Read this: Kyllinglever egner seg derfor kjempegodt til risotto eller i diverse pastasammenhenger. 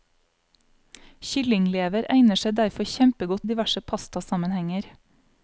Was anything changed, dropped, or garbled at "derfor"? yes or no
no